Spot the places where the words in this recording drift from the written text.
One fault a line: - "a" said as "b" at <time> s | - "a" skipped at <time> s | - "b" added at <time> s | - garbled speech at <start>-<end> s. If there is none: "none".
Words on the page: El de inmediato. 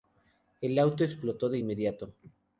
- "auto explotó" added at 0.8 s